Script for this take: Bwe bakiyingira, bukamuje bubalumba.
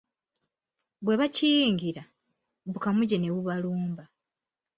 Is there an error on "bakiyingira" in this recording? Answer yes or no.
no